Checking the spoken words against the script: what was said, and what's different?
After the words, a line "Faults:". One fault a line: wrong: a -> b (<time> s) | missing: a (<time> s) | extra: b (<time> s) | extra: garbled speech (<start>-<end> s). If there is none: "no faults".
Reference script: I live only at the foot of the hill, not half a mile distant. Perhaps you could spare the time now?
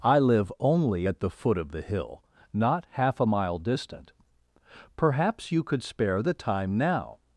I live only at the foot of the hill, not half a mile distant. Perhaps you could spare the time now?
Faults:
no faults